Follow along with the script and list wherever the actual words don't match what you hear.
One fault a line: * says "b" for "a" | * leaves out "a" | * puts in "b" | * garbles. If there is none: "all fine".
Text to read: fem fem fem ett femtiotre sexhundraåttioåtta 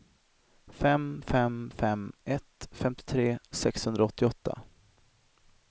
all fine